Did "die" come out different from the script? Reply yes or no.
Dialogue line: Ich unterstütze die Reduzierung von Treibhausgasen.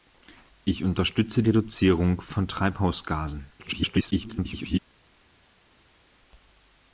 yes